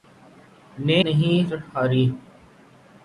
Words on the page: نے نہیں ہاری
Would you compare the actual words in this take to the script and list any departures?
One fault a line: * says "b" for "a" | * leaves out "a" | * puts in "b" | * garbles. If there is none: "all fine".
all fine